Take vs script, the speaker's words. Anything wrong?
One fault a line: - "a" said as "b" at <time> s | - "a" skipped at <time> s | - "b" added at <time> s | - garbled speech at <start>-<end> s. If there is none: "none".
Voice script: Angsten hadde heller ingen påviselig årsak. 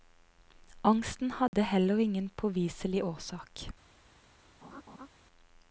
none